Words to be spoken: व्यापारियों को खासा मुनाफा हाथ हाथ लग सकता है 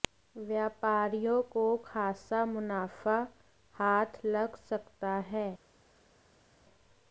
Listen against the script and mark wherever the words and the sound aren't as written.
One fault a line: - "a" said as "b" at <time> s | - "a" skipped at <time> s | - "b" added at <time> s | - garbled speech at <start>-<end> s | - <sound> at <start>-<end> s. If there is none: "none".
- "हाथ" skipped at 4.2 s